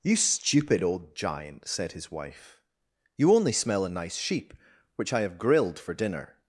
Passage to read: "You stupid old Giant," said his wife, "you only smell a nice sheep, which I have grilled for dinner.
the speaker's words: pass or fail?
pass